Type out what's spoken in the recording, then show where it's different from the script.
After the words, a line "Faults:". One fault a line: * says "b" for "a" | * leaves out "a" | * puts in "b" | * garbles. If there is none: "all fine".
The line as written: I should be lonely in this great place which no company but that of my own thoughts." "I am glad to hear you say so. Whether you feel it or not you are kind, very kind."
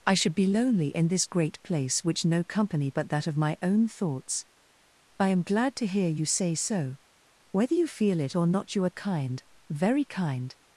I should be lonely in this great place which no company but that of my own thoughts." "I am glad to hear you say so. Whether you feel it or not you are kind, very kind."
Faults:
all fine